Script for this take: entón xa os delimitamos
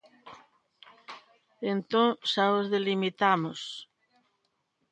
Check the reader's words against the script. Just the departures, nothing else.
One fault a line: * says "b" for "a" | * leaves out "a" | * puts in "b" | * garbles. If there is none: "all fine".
all fine